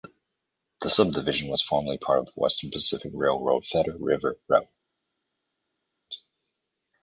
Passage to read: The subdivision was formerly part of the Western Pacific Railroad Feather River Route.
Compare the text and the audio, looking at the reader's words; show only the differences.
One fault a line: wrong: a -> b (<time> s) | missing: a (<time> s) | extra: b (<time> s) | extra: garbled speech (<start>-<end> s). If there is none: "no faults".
no faults